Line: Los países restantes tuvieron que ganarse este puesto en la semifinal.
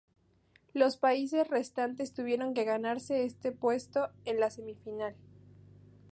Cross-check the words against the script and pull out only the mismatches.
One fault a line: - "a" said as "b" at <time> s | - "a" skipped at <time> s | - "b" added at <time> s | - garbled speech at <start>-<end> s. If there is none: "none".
none